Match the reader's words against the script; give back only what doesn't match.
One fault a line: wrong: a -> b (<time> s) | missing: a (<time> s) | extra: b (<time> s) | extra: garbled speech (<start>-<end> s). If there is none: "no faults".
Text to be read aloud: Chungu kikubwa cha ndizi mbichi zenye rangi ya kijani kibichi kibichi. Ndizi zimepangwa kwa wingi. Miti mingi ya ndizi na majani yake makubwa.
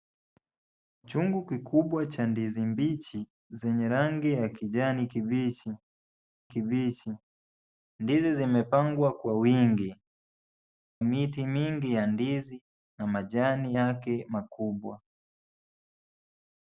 no faults